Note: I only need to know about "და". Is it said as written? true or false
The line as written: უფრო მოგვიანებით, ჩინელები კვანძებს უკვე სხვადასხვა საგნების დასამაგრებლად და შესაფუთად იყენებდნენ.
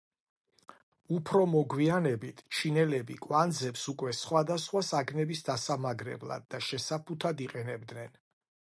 true